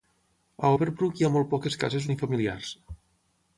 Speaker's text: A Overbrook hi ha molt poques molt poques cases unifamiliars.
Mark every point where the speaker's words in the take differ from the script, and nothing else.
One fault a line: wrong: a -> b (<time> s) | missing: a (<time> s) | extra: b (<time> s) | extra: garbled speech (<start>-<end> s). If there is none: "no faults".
missing: molt poques (1.8 s)